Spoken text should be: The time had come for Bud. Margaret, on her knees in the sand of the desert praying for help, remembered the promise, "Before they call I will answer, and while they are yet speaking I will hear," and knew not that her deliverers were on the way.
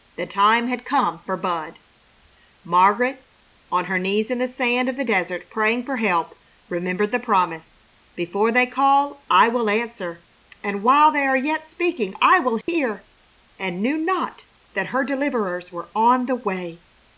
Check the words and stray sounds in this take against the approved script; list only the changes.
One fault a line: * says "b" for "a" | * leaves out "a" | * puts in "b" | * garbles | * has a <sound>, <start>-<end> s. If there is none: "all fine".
* has a dropout, 12.6-12.7 s